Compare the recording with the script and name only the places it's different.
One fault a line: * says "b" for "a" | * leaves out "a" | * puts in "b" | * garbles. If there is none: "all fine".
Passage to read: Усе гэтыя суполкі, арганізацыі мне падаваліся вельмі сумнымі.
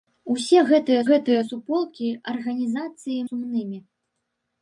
* puts in "гэтыя"
* leaves out "мне падаваліся вельмі"